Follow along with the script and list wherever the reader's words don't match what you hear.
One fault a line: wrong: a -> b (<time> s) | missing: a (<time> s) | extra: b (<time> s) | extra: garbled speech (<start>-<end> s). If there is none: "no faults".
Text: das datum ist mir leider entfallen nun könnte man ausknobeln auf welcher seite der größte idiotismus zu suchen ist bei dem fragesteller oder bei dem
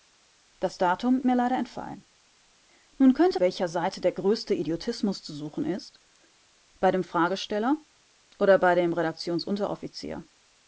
missing: ist (1.2 s)
missing: man ausknobeln auf (3.4 s)